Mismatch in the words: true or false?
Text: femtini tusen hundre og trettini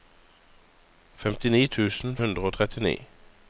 false